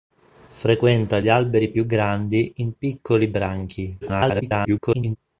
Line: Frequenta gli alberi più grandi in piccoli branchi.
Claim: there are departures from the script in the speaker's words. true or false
true